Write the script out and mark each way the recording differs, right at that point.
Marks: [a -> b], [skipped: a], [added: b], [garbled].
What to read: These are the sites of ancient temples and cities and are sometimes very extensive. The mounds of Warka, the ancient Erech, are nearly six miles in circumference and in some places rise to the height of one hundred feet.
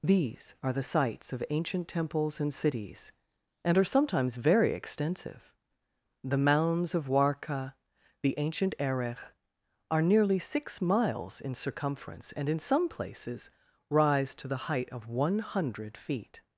These are the sites of ancient temples and cities and are sometimes very extensive. The mounds of Warka, the ancient Erech, are nearly six miles in circumference and in some places rise to the height of one hundred feet.